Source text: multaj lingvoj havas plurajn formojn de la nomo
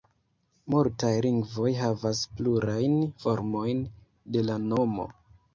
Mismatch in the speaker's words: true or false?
false